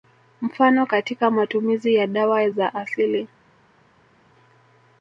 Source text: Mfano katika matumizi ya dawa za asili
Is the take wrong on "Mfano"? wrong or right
right